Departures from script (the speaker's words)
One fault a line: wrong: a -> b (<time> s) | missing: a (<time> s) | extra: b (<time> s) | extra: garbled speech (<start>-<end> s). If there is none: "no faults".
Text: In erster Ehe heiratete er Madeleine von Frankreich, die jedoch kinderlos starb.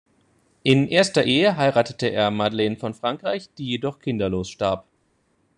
no faults